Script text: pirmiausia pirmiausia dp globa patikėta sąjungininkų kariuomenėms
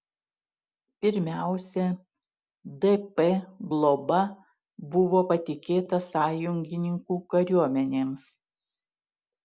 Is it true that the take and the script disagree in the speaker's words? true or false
true